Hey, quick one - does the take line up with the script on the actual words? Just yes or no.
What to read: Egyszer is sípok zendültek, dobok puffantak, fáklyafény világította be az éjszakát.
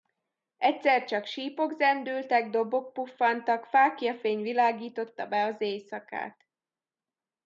no